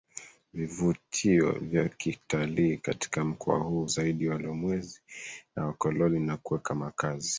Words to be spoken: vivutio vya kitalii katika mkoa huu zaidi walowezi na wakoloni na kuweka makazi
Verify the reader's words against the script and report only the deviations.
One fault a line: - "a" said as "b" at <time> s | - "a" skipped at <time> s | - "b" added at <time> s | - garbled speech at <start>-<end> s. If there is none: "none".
none